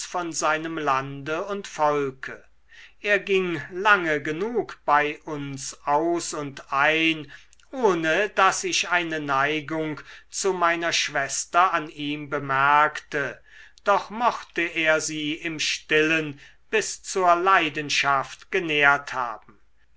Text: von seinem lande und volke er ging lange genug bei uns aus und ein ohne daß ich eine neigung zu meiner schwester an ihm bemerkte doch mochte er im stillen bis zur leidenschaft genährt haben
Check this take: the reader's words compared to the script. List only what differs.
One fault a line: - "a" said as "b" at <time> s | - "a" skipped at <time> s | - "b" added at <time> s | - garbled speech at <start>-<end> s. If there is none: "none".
- "sie" added at 15.0 s